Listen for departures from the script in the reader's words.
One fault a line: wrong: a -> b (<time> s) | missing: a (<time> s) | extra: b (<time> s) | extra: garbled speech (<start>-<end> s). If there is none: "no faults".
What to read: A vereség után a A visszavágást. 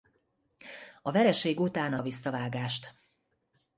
no faults